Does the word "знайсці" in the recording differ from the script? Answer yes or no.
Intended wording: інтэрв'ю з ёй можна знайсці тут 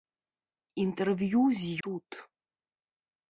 yes